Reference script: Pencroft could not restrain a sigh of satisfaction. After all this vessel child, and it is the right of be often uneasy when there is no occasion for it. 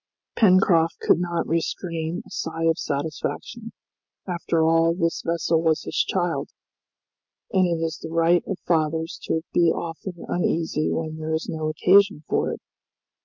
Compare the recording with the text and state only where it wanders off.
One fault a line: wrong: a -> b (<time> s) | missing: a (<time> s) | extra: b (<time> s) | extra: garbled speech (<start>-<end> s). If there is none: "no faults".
extra: was his (5.6 s)
extra: fathers to (8.7 s)